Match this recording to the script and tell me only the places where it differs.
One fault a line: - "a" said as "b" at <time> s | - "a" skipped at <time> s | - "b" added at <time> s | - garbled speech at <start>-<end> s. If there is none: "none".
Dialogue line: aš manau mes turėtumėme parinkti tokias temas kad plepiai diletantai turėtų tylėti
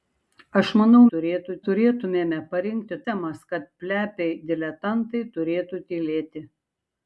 - "mes" said as "turėtų" at 1.1 s
- "tokias" skipped at 3.0 s